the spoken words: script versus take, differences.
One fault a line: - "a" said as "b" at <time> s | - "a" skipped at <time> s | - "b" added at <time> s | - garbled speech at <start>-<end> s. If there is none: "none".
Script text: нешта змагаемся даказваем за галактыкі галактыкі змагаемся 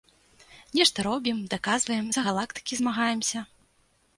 - "змагаемся" said as "робім" at 1.1 s
- "галактыкі" skipped at 2.7 s